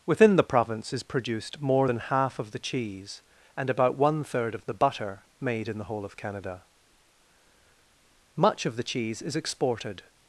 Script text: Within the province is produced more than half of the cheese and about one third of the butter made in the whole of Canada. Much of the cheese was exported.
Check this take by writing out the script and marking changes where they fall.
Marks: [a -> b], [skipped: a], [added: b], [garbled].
Within the province is produced more than half of the cheese and about one third of the butter made in the whole of Canada. Much of the cheese [was -> is] exported.